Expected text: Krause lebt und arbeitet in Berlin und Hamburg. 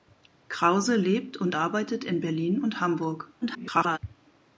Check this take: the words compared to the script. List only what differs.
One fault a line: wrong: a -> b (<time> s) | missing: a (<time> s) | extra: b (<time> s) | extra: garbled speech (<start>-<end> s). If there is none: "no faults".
extra: garbled speech (3.4-4.0 s)